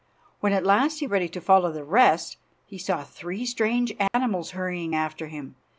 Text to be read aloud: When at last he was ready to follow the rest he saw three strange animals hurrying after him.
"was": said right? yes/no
no